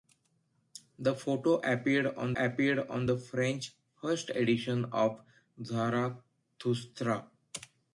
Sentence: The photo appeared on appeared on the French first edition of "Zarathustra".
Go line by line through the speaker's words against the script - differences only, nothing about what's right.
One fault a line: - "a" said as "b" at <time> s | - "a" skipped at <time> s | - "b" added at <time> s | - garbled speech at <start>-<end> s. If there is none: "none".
none